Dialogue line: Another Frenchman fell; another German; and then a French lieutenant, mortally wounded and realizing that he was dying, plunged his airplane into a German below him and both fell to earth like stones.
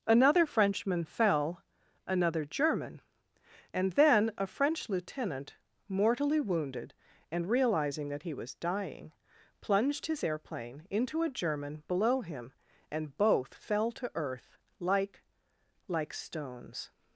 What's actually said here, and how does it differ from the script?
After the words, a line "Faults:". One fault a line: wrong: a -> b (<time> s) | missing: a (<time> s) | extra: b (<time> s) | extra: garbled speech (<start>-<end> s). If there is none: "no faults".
Another Frenchman fell; another German; and then a French lieutenant, mortally wounded and realizing that he was dying, plunged his airplane into a German below him and both fell to earth like like stones.
Faults:
extra: like (15.9 s)